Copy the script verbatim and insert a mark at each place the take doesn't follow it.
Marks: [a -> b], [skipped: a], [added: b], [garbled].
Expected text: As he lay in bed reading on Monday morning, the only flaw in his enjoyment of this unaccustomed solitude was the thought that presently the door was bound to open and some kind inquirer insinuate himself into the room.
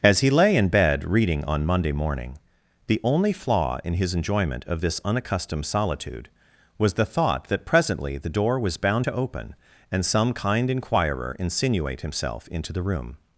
As he lay in bed reading on Monday morning, the only flaw in his enjoyment of this unaccustomed solitude was the thought that presently the door was bound to open and some kind inquirer insinuate himself into the room.